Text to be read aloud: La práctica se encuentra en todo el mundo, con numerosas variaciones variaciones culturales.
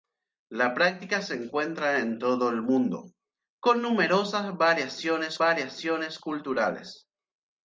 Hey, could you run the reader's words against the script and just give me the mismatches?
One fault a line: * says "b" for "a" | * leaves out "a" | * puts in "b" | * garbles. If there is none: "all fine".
all fine